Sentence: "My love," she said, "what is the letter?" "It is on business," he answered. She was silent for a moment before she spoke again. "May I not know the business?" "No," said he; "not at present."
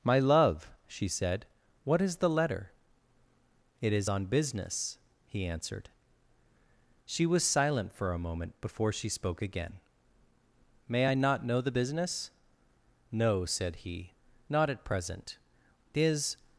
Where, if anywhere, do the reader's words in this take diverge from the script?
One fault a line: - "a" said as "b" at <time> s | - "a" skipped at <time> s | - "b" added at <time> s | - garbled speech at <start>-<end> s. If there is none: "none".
- "Is" added at 15.9 s